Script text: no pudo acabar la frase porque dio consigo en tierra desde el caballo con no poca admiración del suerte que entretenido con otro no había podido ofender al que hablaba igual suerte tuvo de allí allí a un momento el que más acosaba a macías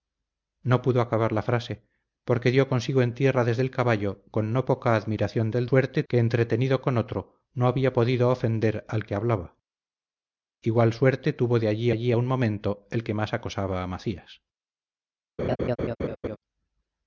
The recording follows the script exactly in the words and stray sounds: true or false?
false